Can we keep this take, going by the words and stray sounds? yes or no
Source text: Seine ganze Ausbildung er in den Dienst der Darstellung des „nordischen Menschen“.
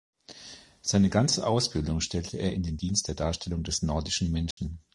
no